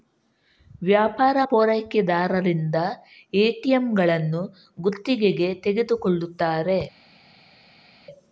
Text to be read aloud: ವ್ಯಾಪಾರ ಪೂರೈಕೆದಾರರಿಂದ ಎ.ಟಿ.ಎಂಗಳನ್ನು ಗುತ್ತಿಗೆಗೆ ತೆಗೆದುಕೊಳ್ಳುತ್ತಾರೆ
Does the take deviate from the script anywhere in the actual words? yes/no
no